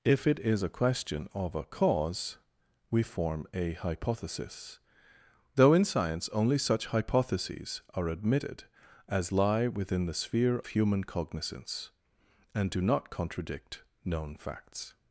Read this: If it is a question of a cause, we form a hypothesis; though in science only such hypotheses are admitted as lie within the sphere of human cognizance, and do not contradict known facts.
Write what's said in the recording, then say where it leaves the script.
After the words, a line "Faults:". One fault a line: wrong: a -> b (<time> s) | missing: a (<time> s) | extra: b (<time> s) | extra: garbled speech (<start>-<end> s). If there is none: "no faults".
If it is a question of a cause, we form a hypothesis; though in science only such hypotheses are admitted as lie within the sphere human cognizance, and do not contradict known facts.
Faults:
missing: of (10.6 s)